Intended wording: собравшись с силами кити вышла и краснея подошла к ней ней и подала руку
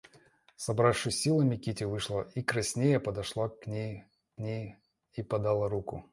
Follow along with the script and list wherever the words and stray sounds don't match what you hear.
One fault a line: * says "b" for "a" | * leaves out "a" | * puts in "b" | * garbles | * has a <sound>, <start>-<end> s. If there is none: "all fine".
all fine